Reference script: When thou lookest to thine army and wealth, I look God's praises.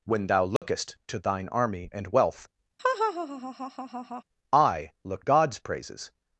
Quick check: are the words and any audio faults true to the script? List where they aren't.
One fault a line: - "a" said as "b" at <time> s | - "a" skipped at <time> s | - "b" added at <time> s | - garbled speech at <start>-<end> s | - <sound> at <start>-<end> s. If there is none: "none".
- dropout at 0.6-0.6 s
- laugh at 2.8-4.2 s